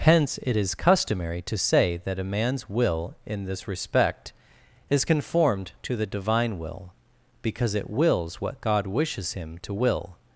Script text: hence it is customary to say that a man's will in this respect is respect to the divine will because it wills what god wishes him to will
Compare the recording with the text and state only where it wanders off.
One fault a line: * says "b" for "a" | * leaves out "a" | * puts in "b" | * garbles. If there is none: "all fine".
* says "conformed" for "respect"